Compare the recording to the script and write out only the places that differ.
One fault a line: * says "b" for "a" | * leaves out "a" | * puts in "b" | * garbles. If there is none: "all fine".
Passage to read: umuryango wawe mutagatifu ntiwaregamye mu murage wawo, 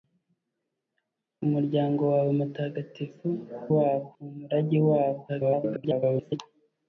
* says "wawo" for "ntiwaregamye"
* garbles